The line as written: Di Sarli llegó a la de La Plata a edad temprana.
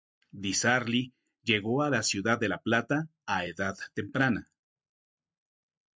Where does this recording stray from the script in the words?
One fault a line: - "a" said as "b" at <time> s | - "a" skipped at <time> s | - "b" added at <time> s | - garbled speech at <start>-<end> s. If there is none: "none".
- "ciudad" added at 2.0 s